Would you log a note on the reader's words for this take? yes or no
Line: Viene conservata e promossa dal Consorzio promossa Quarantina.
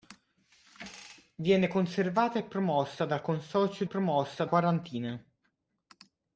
no